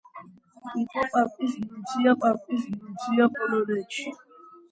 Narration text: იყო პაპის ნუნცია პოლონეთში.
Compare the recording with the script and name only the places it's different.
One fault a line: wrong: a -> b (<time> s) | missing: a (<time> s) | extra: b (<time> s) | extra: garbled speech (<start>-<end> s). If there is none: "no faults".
extra: პაპის ნუნცია (2.3 s)